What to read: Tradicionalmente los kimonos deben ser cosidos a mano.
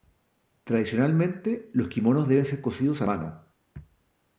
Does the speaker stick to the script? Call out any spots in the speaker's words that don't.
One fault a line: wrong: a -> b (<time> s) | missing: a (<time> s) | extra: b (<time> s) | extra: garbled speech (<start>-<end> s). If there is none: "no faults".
no faults